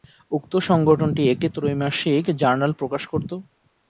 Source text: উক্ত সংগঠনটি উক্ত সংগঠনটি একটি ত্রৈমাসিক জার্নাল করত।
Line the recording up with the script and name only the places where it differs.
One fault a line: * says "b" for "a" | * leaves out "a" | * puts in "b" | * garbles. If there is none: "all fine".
* leaves out "উক্ত সংগঠনটি"
* puts in "প্রকাশ"